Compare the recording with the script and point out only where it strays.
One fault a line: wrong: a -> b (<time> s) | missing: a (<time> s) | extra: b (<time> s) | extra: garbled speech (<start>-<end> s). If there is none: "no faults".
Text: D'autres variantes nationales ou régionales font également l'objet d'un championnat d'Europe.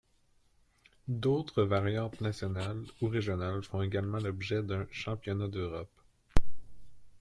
no faults